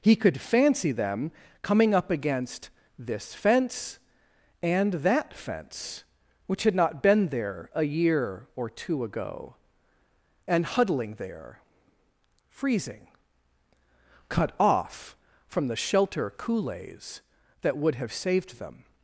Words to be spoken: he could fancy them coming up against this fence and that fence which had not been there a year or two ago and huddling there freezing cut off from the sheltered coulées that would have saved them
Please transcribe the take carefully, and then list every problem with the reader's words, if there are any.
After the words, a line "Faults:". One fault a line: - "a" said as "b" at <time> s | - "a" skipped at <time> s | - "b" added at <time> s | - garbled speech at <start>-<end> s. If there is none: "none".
he could fancy them coming up against this fence and that fence which had not been there a year or two ago and huddling there freezing cut off from the shelter coulées that would have saved them
Faults:
- "sheltered" said as "shelter" at 15.8 s